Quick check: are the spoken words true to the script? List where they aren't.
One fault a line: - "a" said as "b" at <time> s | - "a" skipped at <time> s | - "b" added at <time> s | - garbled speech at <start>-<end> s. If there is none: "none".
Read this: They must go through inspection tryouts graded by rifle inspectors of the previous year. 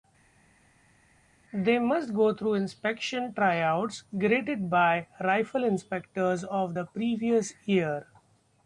none